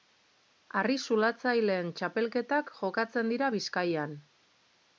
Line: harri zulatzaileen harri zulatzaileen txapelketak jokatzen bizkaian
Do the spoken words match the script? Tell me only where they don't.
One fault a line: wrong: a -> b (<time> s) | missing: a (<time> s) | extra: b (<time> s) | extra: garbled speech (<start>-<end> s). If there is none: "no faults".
missing: harri zulatzaileen (1.9 s)
extra: dira (3.4 s)